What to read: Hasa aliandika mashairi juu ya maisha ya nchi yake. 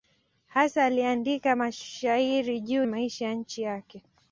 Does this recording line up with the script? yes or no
no